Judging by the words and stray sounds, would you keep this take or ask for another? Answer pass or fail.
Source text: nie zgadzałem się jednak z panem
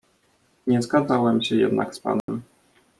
fail